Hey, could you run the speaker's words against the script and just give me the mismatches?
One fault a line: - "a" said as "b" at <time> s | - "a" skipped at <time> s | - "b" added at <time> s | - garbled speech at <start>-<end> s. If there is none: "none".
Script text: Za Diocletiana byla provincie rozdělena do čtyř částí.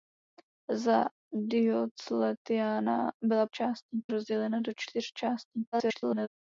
- "provincie" said as "částí" at 3.5 s
- garbled speech at 5.7-6.3 s